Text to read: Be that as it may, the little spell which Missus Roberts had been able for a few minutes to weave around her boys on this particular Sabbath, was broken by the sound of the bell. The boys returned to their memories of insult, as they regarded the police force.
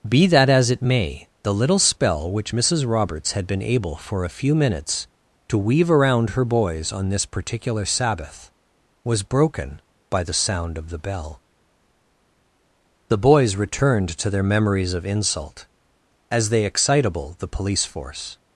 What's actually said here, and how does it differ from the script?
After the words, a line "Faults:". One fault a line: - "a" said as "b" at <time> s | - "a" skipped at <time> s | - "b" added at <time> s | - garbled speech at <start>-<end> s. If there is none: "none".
Be that as it may, the little spell which Missus Roberts had been able for a few minutes to weave around her boys on this particular Sabbath, was broken by the sound of the bell. The boys returned to their memories of insult, as they excitable the police force.
Faults:
- "regarded" said as "excitable" at 16.6 s